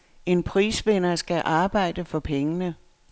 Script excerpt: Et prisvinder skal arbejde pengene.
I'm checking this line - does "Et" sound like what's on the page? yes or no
no